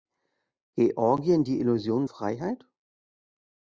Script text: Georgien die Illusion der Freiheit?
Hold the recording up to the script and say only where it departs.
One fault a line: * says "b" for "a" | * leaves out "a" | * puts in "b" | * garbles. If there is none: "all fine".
* leaves out "der"